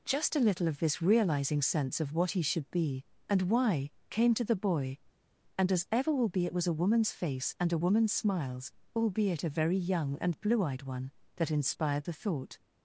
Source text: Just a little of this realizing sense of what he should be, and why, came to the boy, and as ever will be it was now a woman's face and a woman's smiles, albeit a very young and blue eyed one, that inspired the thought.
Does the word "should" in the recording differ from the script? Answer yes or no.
no